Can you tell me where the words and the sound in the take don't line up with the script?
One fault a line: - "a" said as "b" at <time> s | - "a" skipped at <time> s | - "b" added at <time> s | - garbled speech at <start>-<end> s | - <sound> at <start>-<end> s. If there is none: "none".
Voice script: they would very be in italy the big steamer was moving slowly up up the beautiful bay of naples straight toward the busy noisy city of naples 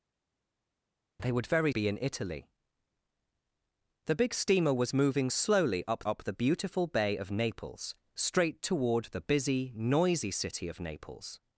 none